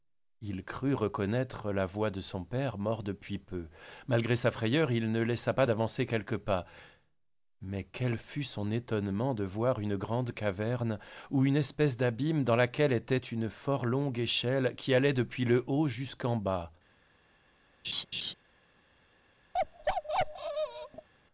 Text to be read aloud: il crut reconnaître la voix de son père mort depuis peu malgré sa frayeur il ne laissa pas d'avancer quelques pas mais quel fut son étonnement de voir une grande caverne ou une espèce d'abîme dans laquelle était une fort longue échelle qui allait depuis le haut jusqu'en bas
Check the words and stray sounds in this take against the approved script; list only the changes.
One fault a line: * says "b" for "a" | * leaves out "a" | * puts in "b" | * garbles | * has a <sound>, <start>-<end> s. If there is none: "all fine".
* has a laugh, 17.8-18.3 s
* has a bark, 19.5-21.1 s